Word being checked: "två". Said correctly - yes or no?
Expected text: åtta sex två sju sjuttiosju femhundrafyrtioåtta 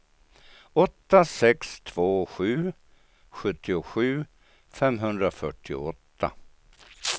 yes